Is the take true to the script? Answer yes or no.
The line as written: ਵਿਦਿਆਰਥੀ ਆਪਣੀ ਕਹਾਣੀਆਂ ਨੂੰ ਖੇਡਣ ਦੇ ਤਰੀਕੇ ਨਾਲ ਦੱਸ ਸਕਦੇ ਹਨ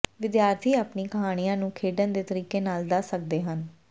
yes